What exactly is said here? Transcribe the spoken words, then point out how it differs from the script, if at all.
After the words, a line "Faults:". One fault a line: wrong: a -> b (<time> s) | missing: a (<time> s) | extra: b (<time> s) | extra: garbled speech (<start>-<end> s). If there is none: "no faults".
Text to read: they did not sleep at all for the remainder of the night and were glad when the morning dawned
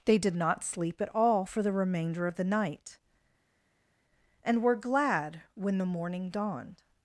they did not sleep at all for the remainder of the night and were glad when the morning dawned
Faults:
no faults